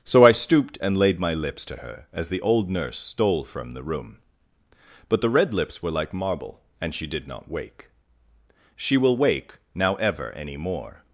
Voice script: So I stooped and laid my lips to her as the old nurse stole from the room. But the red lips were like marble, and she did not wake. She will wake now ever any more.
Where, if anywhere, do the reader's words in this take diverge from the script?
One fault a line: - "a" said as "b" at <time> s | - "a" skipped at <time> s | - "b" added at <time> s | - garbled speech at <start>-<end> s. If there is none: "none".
none